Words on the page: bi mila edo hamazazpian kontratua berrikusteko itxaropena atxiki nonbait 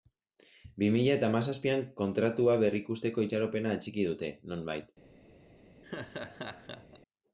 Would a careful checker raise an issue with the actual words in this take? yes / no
yes